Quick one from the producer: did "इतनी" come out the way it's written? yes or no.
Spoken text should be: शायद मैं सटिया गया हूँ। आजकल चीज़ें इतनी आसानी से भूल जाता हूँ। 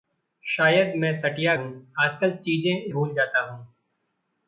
no